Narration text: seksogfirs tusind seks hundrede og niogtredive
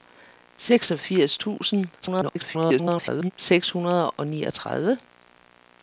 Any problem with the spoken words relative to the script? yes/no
yes